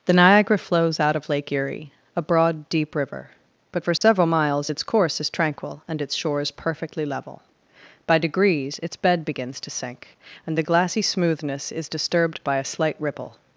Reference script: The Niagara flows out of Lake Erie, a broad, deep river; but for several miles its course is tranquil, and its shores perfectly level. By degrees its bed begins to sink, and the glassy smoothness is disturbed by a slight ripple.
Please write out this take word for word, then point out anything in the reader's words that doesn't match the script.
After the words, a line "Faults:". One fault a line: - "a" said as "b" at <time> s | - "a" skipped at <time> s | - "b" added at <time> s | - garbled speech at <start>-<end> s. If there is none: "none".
The Niagara flows out of Lake Erie, a broad, deep river; but for several miles its course is tranquil, and its shores perfectly level. By degrees its bed begins to sink, and the glassy smoothness is disturbed by a slight ripple.
Faults:
none